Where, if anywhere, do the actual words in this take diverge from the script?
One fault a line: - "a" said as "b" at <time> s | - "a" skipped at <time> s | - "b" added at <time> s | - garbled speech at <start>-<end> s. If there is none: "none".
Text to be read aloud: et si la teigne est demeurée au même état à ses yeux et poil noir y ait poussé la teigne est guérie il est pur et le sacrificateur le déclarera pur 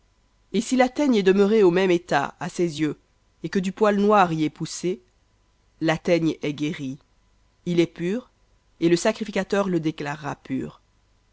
- "que du" added at 3.5 s